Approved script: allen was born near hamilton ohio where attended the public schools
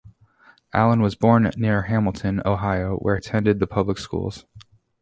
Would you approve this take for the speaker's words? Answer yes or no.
yes